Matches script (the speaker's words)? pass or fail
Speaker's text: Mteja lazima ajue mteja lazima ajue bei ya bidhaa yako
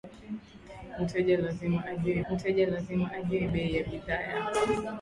pass